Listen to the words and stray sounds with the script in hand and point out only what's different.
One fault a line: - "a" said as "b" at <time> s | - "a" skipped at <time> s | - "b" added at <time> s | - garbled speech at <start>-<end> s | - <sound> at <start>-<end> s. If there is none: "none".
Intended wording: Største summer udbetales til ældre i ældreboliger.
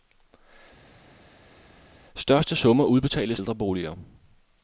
- "til ældre i" skipped at 3.4 s